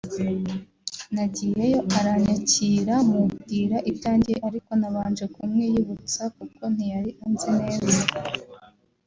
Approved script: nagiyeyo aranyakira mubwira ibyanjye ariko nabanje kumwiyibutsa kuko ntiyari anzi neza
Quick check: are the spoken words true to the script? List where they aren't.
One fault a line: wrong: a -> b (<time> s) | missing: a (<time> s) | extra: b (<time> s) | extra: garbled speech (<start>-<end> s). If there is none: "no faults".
no faults